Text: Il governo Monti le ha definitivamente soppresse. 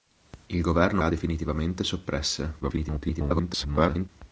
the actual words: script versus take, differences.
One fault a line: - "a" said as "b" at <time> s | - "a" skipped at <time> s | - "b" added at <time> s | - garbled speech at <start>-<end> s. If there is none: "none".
- "Monti le" skipped at 1.0 s
- garbled speech at 2.6-4.1 s